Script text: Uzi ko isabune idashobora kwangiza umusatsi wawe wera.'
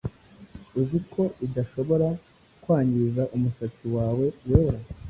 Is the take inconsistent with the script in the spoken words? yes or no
yes